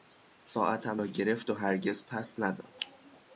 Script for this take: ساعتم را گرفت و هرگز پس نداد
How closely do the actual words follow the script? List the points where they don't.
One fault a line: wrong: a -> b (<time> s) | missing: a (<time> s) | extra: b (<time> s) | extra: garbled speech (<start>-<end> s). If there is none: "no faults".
no faults